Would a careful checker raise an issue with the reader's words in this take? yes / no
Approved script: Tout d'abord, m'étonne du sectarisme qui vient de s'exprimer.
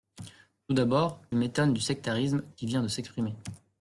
no